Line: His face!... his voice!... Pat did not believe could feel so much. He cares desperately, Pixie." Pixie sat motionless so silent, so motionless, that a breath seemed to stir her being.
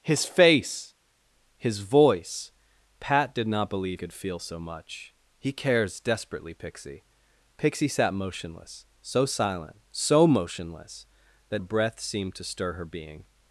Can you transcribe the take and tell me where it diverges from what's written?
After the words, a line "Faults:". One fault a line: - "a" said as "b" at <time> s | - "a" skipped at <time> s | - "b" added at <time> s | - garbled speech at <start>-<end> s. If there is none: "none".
His face!... his voice!... Pat did not believe could feel so much. He cares desperately, Pixie." Pixie sat motionless so silent, so motionless, that a breath seemed to stir her being.
Faults:
none